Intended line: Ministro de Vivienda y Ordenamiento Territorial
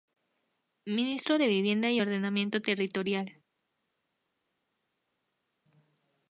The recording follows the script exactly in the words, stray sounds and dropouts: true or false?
true